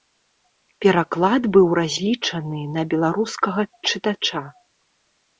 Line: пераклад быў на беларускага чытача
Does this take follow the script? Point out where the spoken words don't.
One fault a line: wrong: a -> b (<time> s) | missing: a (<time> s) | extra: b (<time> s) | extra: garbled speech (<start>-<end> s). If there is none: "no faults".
extra: разлічаны (1.8 s)